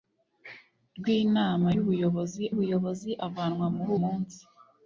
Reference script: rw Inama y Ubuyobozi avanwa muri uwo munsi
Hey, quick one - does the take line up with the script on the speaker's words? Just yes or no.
no